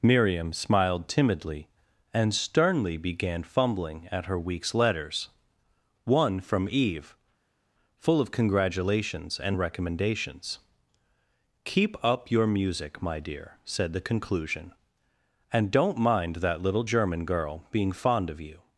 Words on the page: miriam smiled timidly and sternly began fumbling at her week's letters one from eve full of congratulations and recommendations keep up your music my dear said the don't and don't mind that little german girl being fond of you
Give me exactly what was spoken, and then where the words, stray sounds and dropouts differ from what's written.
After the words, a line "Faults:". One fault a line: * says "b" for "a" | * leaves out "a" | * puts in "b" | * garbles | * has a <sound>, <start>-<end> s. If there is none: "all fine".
miriam smiled timidly and sternly began fumbling at her week's letters one from eve full of congratulations and recommendations keep up your music my dear said the conclusion and don't mind that little german girl being fond of you
Faults:
* says "conclusion" for "don't"